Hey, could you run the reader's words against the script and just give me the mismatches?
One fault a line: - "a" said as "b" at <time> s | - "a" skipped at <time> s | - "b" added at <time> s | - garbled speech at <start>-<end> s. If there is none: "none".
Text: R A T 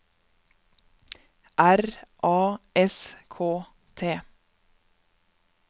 - "S K" added at 2.7 s